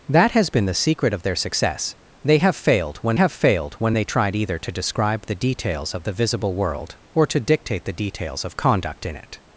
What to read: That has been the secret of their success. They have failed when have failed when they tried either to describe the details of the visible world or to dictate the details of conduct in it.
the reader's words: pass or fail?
pass